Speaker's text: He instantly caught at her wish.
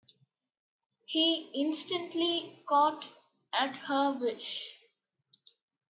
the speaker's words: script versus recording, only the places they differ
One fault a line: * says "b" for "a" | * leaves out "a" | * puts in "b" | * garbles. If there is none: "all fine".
all fine